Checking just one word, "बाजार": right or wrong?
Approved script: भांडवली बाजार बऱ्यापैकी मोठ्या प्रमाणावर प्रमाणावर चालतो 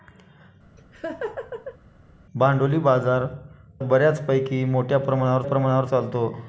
right